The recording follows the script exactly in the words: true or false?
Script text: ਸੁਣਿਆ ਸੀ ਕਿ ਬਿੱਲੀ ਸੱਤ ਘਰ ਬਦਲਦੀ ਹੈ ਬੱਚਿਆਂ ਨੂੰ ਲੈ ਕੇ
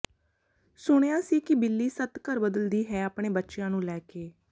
false